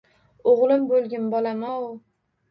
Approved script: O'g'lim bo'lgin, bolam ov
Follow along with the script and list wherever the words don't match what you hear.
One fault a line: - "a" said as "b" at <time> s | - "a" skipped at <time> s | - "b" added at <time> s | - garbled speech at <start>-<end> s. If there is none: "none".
none